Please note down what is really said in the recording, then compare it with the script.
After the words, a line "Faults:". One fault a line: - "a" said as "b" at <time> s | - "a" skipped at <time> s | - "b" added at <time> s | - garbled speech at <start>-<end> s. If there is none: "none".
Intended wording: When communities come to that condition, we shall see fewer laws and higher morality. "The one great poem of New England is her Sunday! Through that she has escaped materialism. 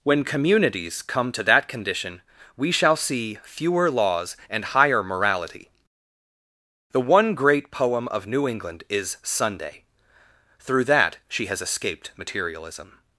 When communities come to that condition, we shall see fewer laws and higher morality. "The one great poem of New England is Sunday! Through that she has escaped materialism.
Faults:
- "her" skipped at 9.2 s